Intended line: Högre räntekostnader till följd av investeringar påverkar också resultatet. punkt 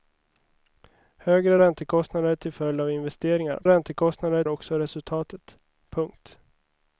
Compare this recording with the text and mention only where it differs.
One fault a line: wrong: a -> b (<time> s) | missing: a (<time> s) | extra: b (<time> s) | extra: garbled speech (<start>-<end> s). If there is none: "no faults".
wrong: påverkar -> räntekostnader (3.7 s)